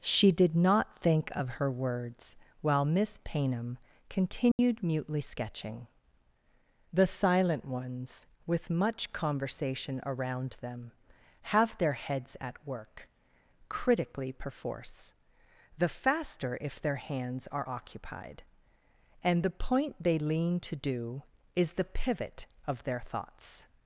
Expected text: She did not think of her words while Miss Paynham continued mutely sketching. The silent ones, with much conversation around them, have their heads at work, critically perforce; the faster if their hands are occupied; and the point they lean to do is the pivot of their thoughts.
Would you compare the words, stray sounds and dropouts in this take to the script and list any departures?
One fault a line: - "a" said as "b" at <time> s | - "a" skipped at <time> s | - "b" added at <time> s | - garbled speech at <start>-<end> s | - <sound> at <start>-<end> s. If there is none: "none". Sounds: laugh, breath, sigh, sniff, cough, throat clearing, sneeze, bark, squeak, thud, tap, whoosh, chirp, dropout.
- dropout at 4.5-4.6 s